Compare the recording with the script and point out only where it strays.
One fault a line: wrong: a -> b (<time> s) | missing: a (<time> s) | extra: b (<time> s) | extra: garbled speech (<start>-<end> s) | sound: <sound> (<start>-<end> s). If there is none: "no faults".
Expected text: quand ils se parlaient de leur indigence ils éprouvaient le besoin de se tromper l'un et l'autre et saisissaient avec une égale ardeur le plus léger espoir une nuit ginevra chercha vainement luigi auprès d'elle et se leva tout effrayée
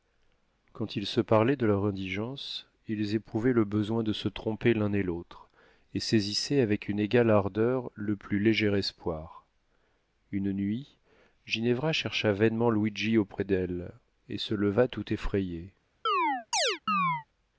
sound: chirp (16.1-17.3 s)